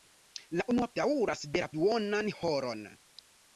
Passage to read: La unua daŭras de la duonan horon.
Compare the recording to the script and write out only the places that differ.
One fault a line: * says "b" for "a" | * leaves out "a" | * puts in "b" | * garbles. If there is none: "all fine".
all fine